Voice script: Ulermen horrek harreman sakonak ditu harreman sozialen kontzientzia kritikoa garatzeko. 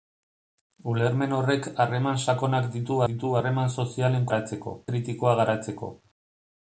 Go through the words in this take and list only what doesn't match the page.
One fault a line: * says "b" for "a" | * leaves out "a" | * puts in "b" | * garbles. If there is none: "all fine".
* puts in "ditu"
* says "garatzeko" for "kontzientzia"